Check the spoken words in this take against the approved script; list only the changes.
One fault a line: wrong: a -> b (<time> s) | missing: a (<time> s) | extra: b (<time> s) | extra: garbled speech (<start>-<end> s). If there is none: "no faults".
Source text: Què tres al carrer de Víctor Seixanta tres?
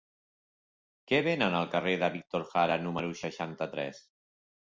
wrong: tres -> venen (1.3 s)
extra: Jara número (2.5 s)